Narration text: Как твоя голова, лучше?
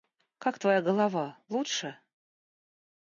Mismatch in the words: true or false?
false